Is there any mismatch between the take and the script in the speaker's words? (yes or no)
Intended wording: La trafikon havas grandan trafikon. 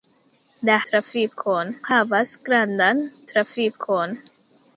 no